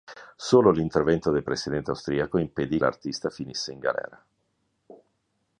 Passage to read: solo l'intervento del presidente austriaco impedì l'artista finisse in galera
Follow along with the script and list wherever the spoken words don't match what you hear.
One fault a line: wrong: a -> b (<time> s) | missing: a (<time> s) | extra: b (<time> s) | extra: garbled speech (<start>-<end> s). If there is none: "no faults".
no faults